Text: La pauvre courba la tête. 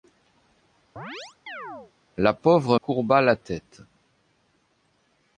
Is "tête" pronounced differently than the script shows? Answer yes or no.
no